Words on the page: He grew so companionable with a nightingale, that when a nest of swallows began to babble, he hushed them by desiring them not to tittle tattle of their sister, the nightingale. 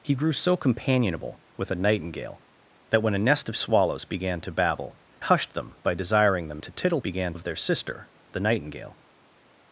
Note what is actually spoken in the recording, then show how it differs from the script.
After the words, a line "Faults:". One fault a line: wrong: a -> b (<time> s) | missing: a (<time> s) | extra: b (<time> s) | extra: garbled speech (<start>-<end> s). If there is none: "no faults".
He grew so companionable with a nightingale, that when a nest of swallows began to babble, hushed them by desiring them to tittle began of their sister, the nightingale.
Faults:
missing: he (5.0 s)
missing: not (6.6 s)
wrong: tattle -> began (7.0 s)